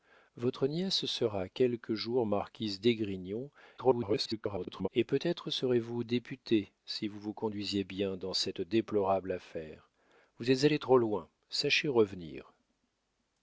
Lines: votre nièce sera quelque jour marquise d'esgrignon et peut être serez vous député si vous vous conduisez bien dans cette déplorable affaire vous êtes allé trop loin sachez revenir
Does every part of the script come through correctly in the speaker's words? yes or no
no